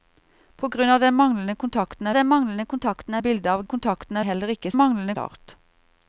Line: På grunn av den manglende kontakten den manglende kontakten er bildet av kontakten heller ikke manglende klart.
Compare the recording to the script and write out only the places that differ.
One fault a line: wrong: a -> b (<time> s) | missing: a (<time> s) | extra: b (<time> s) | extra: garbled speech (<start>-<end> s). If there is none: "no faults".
no faults